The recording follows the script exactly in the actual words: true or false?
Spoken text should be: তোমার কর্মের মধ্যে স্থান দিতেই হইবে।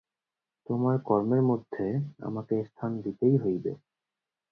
false